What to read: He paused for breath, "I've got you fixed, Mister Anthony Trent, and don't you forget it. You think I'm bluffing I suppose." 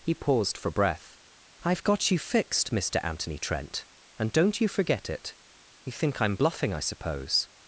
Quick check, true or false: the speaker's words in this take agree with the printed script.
true